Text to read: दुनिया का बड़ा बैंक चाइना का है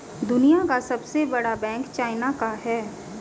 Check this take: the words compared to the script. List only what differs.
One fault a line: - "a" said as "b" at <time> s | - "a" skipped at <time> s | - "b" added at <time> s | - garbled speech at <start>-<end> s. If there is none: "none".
- "सबसे" added at 0.8 s